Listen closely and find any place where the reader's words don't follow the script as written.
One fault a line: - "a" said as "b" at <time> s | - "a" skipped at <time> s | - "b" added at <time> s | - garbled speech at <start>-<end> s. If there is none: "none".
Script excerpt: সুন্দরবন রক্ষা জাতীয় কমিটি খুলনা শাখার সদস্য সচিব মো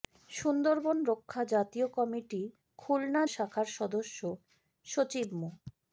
none